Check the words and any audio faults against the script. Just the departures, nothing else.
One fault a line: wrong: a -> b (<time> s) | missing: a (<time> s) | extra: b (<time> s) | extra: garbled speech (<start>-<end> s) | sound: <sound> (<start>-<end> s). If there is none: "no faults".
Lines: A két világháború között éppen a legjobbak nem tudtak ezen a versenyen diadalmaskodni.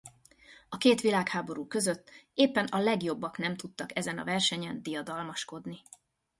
no faults